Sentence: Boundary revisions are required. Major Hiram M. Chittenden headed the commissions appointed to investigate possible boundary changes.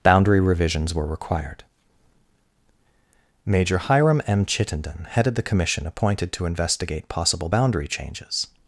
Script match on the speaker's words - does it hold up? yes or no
no